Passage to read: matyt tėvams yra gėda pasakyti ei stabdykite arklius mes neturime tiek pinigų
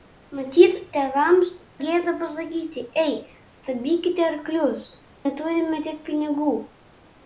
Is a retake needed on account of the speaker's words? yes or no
yes